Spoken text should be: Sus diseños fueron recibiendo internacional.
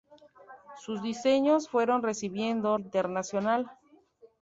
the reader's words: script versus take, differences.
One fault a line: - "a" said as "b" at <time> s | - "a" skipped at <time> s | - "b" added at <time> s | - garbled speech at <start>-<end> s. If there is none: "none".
none